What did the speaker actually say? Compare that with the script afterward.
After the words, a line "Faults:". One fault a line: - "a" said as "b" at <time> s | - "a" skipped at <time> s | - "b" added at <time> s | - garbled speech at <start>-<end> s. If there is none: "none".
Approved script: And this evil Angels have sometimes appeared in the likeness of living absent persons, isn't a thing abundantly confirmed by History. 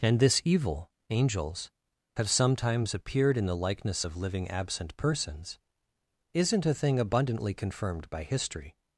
And this evil Angels have sometimes appeared in the likeness of living absent persons, isn't a thing abundantly confirmed by History.
Faults:
none